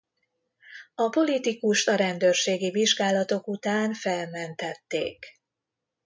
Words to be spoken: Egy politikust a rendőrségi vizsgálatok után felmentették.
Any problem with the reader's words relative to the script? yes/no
yes